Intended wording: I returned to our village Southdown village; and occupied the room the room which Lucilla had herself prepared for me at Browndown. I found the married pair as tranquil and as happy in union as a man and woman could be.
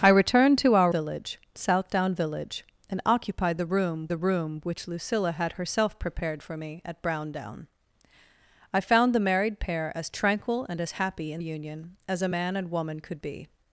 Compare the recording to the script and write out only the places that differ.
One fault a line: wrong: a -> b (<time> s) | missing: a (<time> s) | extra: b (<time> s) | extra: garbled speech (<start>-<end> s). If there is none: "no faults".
no faults